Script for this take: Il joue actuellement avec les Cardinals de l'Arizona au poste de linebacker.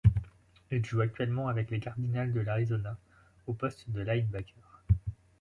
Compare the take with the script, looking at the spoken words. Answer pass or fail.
pass